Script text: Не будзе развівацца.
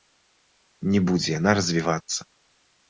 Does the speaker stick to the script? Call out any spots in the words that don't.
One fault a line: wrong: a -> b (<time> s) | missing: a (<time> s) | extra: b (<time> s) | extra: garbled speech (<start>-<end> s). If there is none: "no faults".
extra: яна (1.4 s)